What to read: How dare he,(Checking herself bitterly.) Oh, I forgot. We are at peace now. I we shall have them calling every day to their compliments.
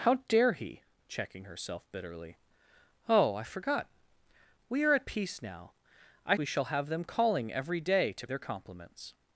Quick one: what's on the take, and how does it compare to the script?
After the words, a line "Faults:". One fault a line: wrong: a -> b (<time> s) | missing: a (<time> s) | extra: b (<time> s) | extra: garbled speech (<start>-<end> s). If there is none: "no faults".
How dare he,(Checking herself bitterly.) Oh, I forgot. We are at peace now. I we shall have them calling every day to their compliments.
Faults:
no faults